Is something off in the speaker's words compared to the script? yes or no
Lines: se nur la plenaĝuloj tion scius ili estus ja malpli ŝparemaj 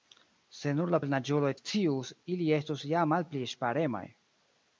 yes